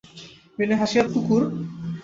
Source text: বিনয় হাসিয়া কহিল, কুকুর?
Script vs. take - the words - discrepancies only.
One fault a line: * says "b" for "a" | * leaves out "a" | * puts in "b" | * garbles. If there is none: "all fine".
* leaves out "কহিল"